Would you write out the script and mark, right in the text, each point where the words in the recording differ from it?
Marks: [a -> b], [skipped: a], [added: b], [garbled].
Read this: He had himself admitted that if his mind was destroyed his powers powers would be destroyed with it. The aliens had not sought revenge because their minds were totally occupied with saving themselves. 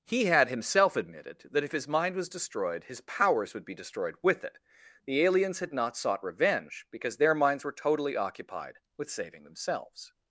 He had himself admitted that if his mind was destroyed his powers [skipped: powers] would be destroyed with it. The aliens had not sought revenge because their minds were totally occupied with saving themselves.